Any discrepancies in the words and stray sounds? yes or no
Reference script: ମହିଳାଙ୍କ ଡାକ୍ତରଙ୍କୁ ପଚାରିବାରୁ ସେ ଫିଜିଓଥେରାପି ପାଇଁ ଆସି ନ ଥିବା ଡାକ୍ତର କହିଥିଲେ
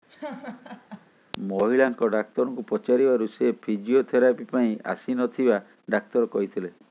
yes